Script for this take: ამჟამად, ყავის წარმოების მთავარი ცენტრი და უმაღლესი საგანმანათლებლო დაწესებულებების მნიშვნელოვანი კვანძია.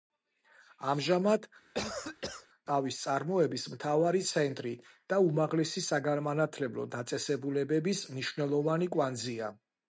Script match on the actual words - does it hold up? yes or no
yes